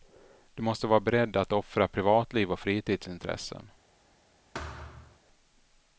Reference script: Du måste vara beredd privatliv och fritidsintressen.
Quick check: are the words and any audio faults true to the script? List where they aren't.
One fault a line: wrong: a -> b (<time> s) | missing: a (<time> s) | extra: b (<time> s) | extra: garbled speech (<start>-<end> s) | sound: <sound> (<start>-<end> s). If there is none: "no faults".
extra: att offra (1.4 s)
sound: thud (4.5-5.2 s)